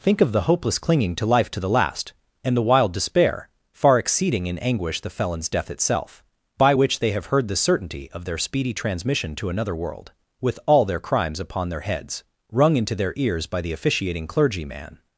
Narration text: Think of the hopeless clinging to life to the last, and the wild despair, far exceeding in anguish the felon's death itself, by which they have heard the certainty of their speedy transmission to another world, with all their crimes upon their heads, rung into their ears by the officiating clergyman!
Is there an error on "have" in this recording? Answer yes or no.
no